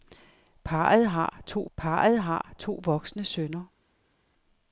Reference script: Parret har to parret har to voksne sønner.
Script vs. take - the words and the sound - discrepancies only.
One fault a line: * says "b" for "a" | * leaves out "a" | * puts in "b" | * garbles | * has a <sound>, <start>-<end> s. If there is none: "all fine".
all fine